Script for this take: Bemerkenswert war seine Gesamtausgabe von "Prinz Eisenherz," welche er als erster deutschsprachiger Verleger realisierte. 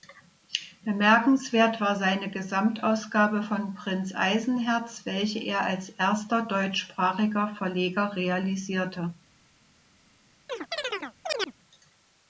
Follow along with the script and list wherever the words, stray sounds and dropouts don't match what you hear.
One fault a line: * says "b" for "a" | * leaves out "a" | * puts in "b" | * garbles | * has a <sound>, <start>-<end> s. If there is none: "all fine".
* has a chirp, 10.5-11.5 s